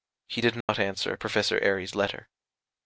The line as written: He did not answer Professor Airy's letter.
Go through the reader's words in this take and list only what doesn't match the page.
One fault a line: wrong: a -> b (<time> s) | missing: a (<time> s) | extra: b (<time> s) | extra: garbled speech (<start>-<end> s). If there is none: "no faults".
no faults